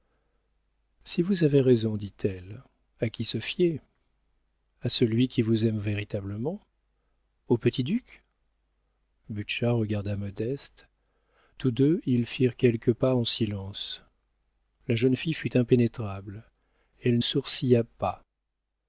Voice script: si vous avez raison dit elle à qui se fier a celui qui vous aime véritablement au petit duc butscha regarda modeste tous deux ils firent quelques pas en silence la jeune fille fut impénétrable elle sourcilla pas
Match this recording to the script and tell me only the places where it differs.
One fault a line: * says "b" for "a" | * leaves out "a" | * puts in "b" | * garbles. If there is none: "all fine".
all fine